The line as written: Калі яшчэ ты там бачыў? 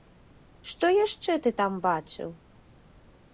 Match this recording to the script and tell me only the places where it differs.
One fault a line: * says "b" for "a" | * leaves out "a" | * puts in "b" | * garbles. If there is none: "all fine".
* says "Што" for "Калі"